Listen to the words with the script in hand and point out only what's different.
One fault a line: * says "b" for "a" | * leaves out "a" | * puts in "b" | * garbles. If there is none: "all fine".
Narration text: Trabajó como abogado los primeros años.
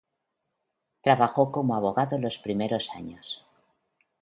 all fine